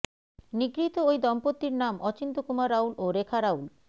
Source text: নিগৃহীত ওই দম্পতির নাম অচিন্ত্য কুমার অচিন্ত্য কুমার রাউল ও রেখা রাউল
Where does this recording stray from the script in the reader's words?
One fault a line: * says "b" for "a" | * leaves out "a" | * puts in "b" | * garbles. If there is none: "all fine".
* leaves out "অচিন্ত্য কুমার"